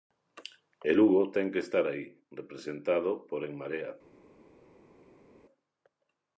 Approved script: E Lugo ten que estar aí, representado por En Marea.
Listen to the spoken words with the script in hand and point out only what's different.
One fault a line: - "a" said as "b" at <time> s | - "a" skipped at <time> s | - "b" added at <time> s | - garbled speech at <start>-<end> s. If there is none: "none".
none